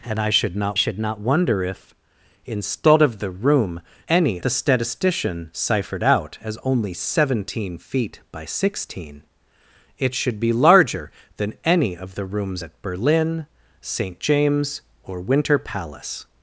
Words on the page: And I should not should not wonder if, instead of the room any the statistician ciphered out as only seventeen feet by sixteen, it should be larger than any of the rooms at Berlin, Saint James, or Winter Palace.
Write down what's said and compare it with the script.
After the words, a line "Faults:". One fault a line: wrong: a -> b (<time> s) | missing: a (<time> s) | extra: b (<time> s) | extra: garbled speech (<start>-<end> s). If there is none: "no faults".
And I should not should not wonder if, instead of the room any the statistician ciphered out as only seventeen feet by sixteen, it should be larger than any of the rooms at Berlin, Saint James, or Winter Palace.
Faults:
no faults